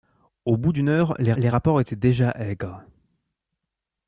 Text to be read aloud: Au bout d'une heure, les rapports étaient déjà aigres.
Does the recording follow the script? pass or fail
fail